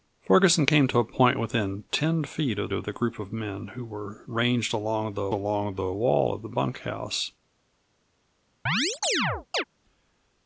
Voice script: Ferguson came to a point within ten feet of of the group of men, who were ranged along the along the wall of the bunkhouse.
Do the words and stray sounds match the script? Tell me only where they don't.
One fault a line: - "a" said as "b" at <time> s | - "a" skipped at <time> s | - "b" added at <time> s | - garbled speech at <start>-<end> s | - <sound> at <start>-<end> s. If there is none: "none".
- chirp at 8.7-9.6 s